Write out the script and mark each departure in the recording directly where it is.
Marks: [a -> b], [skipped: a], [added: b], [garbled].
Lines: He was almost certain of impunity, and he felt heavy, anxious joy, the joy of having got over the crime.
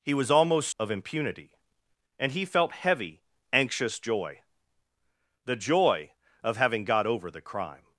He was almost [skipped: certain] of impunity, and he felt heavy, anxious joy, the joy of having got over the crime.